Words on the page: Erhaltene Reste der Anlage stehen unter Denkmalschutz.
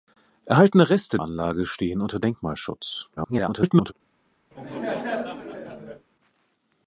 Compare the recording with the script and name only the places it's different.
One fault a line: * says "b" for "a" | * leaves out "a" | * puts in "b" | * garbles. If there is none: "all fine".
* leaves out "der"
* garbles